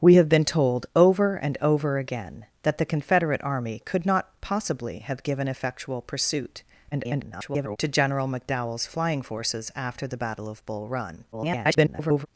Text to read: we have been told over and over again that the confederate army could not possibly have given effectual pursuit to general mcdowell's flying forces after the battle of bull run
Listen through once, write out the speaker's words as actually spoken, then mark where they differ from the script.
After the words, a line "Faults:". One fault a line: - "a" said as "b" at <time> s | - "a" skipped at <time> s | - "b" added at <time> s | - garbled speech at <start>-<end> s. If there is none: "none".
we have been told over and over again that the confederate army could not possibly have given effectual pursuit [garbled] to general mcdowell's flying forces after the battle of bull run [garbled]
Faults:
- garbled speech at 6.9-7.8 s
- garbled speech at 11.3-12.3 s